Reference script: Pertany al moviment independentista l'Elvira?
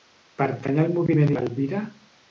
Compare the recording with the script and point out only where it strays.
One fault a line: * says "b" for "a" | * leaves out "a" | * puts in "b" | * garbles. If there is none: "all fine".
* leaves out "independentista"